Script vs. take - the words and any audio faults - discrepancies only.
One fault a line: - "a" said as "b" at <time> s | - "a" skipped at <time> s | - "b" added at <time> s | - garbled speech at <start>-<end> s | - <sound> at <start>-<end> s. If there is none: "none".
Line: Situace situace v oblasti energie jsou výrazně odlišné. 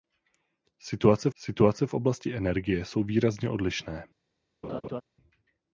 - laugh at 4.6-5.0 s